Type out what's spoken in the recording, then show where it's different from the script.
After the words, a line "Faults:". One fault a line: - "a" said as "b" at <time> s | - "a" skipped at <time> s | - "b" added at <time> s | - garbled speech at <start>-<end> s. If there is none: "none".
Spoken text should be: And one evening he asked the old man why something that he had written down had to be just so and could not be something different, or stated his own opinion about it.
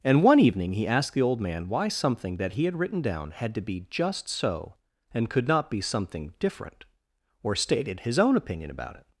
And one evening he asked the old man why something that he had written down had to be just so and could not be something different, or stated his own opinion about it.
Faults:
none